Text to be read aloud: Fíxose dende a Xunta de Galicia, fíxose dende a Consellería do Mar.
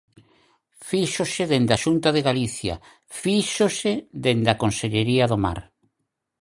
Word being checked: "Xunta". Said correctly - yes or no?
yes